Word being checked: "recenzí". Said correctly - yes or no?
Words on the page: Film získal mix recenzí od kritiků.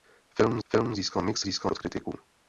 no